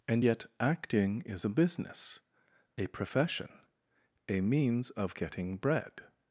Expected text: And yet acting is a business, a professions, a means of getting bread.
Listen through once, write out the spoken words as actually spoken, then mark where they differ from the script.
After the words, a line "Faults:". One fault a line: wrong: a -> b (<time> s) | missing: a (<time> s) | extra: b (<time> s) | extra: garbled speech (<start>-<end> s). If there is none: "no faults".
And yet acting is a business, a profession, a means of getting bread.
Faults:
wrong: professions -> profession (2.9 s)